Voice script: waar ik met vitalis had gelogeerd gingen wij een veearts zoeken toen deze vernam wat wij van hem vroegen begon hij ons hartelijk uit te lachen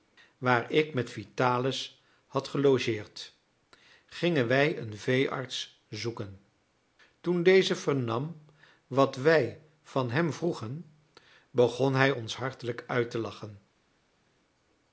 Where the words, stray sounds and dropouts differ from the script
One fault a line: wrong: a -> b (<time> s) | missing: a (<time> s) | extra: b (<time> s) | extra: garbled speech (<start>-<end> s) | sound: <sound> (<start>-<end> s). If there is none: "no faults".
no faults